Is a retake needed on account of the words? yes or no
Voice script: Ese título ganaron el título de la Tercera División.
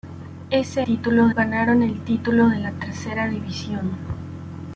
no